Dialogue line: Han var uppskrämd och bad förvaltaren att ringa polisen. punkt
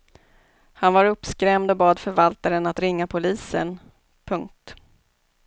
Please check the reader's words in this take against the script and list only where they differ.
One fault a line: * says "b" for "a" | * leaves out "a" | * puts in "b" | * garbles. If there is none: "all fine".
all fine